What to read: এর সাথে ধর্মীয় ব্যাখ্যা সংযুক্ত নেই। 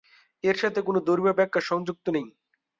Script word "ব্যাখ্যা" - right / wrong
right